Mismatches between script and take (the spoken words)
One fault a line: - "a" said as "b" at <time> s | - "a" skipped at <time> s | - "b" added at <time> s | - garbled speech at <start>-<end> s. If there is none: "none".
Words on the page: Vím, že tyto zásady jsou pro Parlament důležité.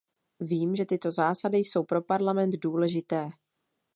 none